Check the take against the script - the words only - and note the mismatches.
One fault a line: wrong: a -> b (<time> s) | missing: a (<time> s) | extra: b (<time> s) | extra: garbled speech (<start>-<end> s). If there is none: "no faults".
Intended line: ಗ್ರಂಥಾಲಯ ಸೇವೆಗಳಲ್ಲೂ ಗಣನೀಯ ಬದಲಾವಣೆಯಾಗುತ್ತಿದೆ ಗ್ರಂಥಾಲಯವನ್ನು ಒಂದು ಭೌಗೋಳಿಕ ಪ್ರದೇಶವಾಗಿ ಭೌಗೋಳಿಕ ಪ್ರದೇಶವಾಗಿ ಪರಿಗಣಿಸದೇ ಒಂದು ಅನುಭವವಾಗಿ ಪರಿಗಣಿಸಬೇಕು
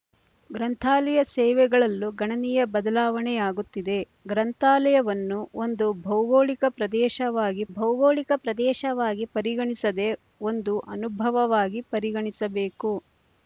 no faults